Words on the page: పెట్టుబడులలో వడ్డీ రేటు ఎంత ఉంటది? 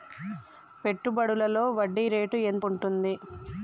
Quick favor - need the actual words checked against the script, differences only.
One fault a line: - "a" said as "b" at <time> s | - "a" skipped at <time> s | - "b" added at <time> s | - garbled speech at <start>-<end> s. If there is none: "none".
none